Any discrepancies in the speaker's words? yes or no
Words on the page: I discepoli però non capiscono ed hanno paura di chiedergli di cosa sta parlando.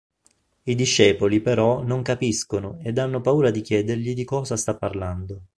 no